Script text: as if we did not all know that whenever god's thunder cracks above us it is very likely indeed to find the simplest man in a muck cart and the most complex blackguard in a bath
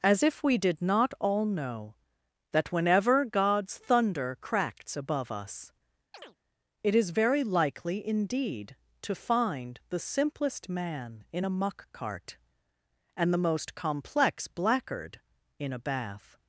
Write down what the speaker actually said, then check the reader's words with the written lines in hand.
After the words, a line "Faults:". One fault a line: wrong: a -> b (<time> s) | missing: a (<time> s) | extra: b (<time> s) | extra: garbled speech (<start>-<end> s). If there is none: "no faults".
as if we did not all know that whenever god's thunder cracks above us it is very likely indeed to find the simplest man in a muck cart and the most complex blackguard in a bath
Faults:
no faults